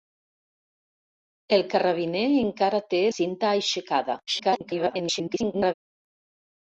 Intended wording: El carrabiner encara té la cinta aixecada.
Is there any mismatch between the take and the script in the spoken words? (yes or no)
yes